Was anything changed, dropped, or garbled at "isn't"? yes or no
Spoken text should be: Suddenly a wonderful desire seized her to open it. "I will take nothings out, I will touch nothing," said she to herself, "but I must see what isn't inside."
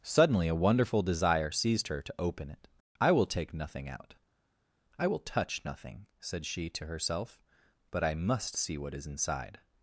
yes